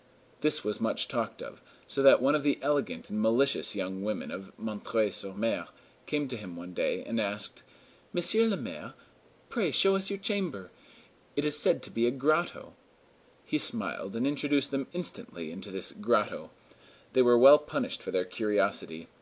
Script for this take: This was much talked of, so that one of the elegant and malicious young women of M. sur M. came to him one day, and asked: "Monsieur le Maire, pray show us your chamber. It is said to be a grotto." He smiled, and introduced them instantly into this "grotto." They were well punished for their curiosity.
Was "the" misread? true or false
false